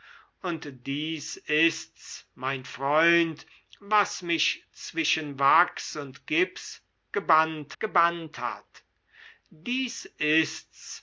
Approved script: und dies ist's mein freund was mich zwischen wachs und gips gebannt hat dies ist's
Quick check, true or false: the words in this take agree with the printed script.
false